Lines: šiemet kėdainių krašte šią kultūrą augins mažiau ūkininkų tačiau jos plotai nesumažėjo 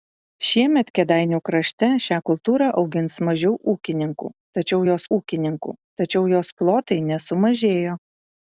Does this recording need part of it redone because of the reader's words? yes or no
yes